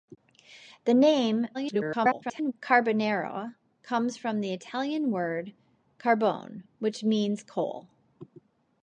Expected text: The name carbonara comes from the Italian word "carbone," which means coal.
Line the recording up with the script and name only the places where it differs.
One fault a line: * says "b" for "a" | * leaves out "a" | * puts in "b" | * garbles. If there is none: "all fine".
* garbles